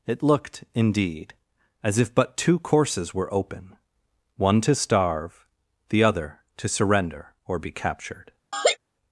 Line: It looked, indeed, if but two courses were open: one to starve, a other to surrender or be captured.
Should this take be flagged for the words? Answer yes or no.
yes